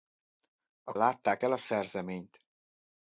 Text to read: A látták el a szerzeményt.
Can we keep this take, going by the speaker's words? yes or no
yes